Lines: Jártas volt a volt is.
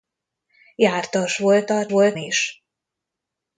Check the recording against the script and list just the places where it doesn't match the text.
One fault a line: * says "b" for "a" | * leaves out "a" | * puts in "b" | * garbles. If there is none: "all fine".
all fine